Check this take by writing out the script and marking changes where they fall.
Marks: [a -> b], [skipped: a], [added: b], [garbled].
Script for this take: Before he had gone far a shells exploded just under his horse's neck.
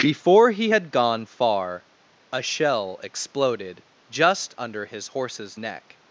Before he had gone far a [shells -> shell] exploded just under his horse's neck.